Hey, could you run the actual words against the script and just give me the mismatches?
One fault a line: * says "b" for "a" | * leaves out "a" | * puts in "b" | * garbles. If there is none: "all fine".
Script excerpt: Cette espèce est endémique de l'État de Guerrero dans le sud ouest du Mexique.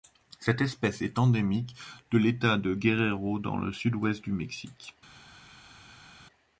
all fine